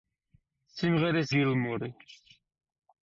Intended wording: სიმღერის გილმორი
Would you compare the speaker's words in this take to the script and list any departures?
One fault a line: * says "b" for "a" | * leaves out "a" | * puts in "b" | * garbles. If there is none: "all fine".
all fine